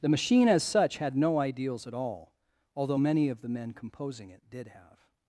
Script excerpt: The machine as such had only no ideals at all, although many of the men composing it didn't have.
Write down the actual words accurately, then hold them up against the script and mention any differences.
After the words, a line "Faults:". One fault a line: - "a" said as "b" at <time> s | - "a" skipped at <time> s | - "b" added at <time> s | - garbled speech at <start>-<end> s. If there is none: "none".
The machine as such had no ideals at all, although many of the men composing it did have.
Faults:
- "only" skipped at 1.1 s
- "didn't" said as "did" at 4.5 s